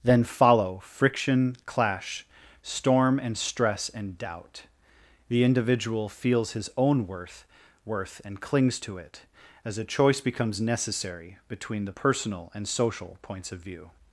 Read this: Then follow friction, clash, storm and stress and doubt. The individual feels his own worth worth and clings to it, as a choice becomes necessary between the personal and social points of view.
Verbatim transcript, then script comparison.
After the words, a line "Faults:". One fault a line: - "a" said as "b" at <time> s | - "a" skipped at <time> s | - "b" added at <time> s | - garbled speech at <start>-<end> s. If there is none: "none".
Then follow friction, clash, storm and stress and doubt. The individual feels his own worth worth and clings to it, as a choice becomes necessary between the personal and social points of view.
Faults:
none